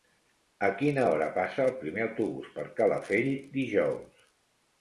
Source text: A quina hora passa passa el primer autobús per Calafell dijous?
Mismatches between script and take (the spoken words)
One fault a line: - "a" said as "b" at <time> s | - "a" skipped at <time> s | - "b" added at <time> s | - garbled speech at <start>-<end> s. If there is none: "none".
- "passa" skipped at 1.7 s